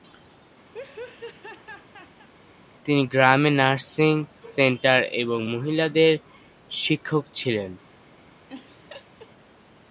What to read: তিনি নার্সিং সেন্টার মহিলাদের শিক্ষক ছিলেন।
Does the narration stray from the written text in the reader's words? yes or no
yes